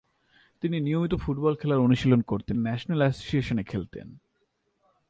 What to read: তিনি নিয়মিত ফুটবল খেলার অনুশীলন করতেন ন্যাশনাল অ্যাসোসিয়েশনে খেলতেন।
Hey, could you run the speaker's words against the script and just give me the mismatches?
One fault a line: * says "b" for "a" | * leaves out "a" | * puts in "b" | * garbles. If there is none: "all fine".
all fine